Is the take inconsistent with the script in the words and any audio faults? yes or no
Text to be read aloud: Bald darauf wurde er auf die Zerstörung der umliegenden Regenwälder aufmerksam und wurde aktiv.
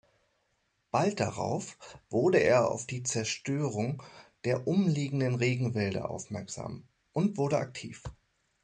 no